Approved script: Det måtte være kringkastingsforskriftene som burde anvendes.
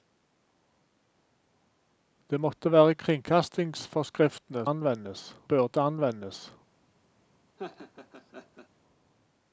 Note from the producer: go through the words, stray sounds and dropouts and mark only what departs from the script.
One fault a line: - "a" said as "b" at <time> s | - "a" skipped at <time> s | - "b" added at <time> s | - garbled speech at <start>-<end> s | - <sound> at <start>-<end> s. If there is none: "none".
- "som" said as "anvendes" at 4.6 s
- laugh at 7.6-8.7 s